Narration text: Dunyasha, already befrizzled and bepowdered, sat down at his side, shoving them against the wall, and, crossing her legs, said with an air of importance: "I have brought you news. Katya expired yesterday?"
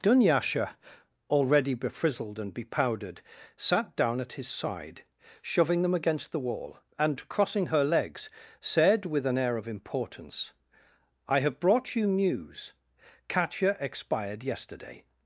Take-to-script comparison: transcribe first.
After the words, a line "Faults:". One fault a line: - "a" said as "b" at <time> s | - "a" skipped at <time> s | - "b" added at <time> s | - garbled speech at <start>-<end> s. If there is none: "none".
Dunyasha, already befrizzled and bepowdered, sat down at his side, shoving them against the wall, and, crossing her legs, said with an air of importance: "I have brought you news. Katya expired yesterday?"
Faults:
none